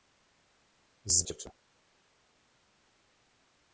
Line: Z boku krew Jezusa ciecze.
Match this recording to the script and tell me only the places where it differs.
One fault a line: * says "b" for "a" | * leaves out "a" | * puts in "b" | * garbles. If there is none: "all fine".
* leaves out "boku krew Jezusa"